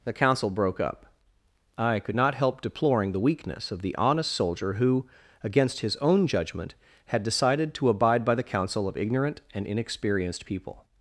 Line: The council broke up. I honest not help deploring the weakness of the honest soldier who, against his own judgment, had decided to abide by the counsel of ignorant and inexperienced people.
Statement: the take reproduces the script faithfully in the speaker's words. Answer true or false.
false